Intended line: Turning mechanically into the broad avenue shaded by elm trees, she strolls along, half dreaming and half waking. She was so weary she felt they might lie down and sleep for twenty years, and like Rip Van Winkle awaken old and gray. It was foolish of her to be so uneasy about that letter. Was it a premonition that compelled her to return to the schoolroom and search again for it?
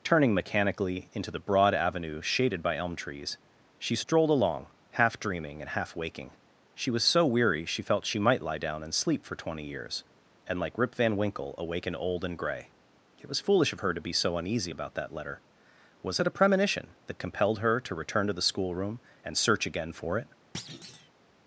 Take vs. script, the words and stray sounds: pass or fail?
fail